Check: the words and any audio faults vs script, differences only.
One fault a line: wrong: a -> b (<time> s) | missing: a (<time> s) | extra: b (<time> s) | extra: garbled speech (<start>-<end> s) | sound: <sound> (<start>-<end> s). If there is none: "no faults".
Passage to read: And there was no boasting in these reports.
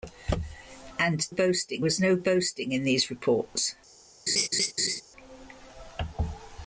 wrong: there -> boasting (1.3 s)
sound: laugh (4.3-5.0 s)